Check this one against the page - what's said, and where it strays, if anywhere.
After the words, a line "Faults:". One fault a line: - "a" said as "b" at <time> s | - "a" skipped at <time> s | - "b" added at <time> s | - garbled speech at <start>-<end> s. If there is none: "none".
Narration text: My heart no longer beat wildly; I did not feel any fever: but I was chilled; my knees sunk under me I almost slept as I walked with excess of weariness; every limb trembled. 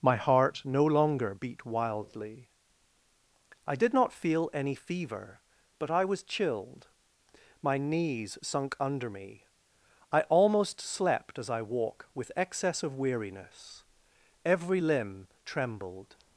My heart no longer beat wildly; I did not feel any fever: but I was chilled; my knees sunk under me I almost slept as I walk with excess of weariness; every limb trembled.
Faults:
- "walked" said as "walk" at 11.6 s